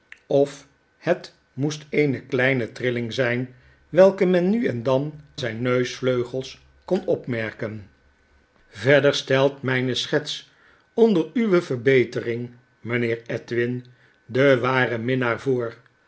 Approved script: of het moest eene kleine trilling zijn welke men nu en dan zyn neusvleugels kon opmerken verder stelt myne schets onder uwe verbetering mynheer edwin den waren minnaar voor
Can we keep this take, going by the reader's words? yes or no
yes